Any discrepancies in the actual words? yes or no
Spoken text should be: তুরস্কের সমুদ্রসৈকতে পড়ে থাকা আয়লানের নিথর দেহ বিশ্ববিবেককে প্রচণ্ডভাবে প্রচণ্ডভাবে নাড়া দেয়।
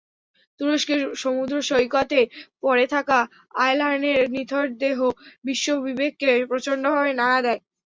yes